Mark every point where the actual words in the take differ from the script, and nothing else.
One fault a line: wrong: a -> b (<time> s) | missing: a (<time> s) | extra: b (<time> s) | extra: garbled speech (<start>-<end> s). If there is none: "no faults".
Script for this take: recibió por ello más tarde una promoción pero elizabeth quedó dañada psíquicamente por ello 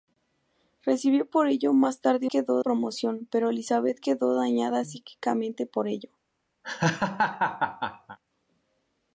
wrong: una -> quedó (2.2 s)